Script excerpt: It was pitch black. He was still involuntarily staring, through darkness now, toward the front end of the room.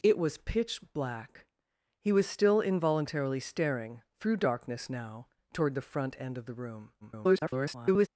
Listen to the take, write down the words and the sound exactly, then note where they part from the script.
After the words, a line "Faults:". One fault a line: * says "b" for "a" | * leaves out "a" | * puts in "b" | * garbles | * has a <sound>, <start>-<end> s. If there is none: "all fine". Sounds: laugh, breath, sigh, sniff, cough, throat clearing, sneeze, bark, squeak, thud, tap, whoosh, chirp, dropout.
It was pitch black. He was still involuntarily staring, through darkness now, toward the front end of the room. [garbled]
Faults:
* garbles